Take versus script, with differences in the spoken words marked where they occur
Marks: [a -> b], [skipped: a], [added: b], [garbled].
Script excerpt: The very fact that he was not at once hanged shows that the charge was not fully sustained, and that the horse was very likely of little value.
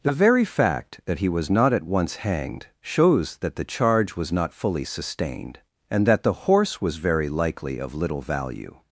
The very fact that he was not at once hanged shows that the charge was not fully sustained, and that the horse was very likely of little value.